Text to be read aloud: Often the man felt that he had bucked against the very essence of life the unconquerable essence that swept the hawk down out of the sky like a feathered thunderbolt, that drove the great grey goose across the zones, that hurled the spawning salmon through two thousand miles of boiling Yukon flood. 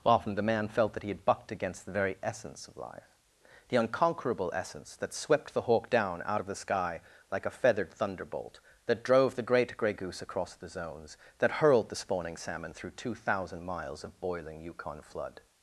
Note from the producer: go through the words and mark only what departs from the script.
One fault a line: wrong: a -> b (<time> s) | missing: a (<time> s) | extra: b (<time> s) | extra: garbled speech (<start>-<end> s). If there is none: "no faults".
no faults